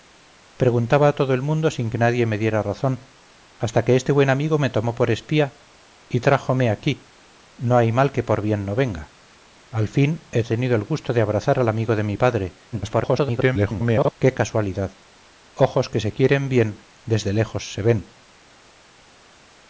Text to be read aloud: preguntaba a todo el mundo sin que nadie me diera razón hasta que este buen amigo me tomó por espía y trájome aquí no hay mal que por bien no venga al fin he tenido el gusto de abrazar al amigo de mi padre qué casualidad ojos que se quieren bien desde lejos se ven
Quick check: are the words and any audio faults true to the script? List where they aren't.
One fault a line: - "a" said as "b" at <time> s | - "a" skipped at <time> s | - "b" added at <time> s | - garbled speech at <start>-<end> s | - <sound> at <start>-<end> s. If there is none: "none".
- garbled speech at 12.7-14.1 s